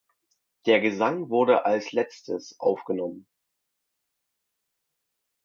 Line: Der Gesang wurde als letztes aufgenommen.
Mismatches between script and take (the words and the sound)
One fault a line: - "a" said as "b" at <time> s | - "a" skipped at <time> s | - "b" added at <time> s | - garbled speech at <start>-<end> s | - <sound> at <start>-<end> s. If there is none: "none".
none